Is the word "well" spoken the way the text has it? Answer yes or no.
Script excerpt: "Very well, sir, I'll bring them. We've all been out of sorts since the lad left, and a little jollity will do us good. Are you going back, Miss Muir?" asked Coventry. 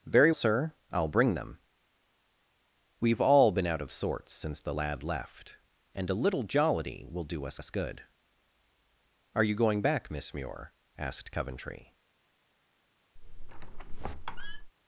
no